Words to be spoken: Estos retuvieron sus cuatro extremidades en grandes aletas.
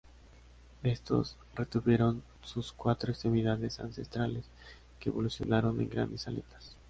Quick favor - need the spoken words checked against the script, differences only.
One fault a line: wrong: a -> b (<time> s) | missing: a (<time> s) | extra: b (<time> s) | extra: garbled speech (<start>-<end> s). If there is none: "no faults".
extra: ancestrales que evolucionaron (3.8 s)